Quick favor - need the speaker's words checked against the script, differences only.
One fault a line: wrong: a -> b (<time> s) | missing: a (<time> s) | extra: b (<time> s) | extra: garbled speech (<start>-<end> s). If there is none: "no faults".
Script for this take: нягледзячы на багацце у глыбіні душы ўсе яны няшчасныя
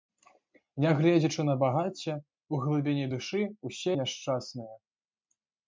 missing: яны (3.9 s)